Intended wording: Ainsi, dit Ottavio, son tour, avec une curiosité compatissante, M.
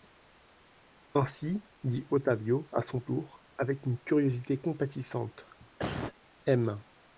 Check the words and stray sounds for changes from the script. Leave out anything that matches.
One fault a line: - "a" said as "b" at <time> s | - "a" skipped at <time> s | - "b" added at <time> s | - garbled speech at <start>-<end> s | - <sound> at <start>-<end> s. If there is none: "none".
- "à" added at 2.7 s
- cough at 5.8-6.1 s